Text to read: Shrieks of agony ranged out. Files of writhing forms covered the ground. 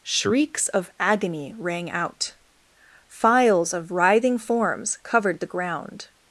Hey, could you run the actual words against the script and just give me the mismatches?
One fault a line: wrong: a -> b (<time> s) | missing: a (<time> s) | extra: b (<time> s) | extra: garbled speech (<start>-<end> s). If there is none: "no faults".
wrong: ranged -> rang (1.6 s)